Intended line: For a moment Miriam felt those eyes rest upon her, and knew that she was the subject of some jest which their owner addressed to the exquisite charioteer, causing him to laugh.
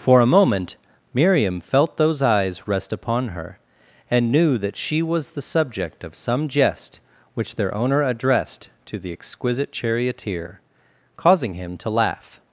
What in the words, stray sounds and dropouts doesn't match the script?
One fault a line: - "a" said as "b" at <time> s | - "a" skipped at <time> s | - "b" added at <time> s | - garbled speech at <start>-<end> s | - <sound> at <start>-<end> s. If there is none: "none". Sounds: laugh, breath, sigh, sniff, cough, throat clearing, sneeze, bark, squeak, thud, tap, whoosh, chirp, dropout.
none